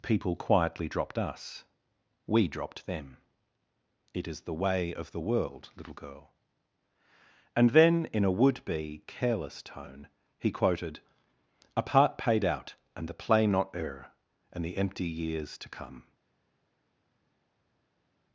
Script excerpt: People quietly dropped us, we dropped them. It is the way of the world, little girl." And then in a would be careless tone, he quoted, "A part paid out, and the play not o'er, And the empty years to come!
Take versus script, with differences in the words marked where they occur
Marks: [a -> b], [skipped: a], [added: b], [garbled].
People quietly dropped us, we dropped them. It is the way of the world, little girl." And then in a would be careless tone, he quoted, "A part paid out, and the play not o'er, And the empty years to come!